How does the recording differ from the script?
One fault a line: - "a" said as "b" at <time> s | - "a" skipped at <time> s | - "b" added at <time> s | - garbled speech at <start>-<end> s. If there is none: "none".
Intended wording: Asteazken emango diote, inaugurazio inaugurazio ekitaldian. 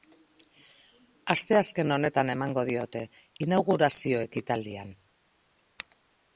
- "honetan" added at 2.0 s
- "inaugurazio" skipped at 4.2 s